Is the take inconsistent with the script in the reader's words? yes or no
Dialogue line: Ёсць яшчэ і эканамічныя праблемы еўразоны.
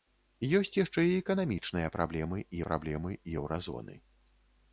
yes